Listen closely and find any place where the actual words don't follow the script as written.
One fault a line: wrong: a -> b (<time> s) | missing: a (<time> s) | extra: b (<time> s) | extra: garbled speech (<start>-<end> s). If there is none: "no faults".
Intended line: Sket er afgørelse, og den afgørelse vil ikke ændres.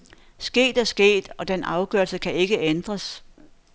wrong: afgørelse -> sket (0.8 s)
wrong: vil -> kan (2.2 s)